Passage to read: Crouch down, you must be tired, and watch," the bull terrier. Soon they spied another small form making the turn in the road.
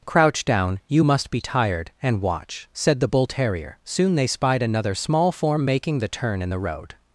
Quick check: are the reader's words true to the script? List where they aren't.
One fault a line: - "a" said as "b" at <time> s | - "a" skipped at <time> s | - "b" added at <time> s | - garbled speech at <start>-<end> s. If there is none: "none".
- "said" added at 2.7 s